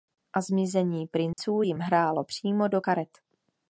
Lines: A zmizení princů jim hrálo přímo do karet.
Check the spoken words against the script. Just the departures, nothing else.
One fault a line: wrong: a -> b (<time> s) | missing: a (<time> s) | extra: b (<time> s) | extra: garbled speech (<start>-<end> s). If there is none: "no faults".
no faults